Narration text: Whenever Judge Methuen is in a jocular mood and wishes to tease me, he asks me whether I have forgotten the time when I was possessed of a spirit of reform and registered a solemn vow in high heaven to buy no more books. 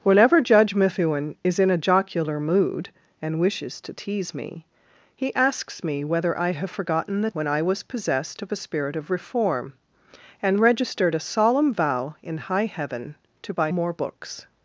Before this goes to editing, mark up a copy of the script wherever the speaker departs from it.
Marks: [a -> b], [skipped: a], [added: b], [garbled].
Whenever Judge Methuen is in a jocular mood and wishes to tease me, he asks me whether I have forgotten the [skipped: time] when I was possessed of a spirit of reform and registered a solemn vow in high heaven to buy [skipped: no] more books.